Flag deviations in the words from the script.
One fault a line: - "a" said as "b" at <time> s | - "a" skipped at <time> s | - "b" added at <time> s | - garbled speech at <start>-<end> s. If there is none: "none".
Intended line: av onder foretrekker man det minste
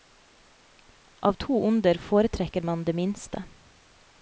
- "to" added at 1.3 s